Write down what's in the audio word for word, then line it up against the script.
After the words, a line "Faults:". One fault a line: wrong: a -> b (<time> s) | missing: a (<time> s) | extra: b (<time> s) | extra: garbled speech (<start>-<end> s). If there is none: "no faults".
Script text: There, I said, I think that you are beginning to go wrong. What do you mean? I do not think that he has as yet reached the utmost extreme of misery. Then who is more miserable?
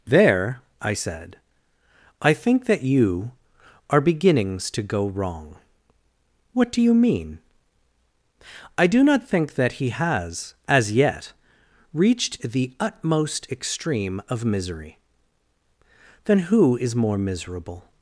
There, I said, I think that you are beginnings to go wrong. What do you mean? I do not think that he has as yet reached the utmost extreme of misery. Then who is more miserable?
Faults:
wrong: beginning -> beginnings (4.0 s)